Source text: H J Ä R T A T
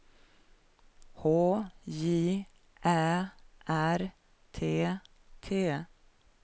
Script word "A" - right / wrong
wrong